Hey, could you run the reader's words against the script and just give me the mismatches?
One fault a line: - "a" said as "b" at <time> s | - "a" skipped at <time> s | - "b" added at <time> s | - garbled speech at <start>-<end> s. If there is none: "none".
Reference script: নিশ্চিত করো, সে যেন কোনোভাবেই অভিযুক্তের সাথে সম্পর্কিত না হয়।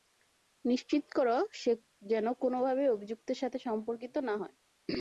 none